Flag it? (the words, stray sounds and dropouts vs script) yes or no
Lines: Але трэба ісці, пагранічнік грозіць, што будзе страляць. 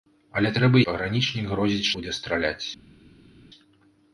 yes